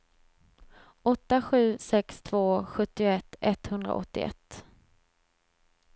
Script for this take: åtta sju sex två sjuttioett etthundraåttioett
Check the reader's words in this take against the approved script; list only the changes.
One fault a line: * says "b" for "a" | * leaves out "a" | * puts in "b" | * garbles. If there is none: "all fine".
all fine